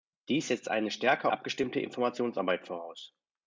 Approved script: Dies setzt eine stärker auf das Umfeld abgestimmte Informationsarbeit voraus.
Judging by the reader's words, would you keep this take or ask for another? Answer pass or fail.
fail